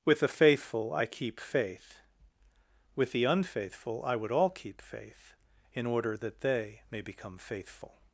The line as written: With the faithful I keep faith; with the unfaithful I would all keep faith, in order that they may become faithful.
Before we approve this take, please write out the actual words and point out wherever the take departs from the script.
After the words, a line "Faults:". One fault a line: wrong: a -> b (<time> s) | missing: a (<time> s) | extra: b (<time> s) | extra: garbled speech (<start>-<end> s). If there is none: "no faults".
With the faithful I keep faith; with the unfaithful I would all keep faith, in order that they may become faithful.
Faults:
no faults